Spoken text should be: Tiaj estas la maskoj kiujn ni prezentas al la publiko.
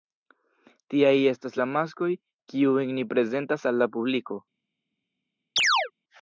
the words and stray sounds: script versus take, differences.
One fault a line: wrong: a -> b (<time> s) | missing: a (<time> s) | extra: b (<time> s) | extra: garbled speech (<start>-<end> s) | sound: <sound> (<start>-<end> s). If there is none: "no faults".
sound: chirp (5.6-5.9 s)